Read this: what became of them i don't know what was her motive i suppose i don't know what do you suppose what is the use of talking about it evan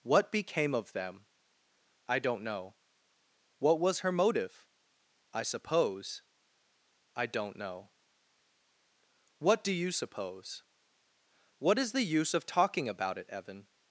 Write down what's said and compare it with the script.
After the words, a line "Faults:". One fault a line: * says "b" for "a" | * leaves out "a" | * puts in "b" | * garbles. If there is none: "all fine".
what became of them i don't know what was her motive i suppose i don't know what do you suppose what is the use of talking about it evan
Faults:
all fine